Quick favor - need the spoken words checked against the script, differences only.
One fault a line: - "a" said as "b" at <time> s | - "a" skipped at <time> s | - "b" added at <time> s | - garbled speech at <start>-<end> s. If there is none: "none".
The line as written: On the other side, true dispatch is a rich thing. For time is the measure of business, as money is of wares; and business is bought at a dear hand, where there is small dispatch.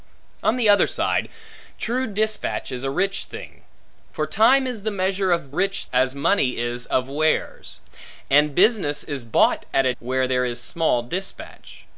- "business" said as "rich" at 5.5 s
- "dear hand" skipped at 9.9 s